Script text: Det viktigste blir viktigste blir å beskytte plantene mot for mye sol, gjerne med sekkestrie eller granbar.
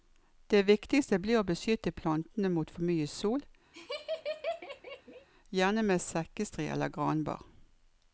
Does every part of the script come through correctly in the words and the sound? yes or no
no